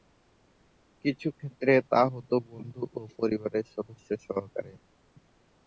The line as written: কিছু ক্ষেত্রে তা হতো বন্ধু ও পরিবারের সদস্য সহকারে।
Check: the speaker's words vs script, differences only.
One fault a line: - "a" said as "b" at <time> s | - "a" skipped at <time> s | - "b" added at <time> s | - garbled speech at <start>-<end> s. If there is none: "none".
none